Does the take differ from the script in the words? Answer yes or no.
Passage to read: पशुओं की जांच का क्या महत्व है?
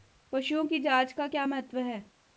no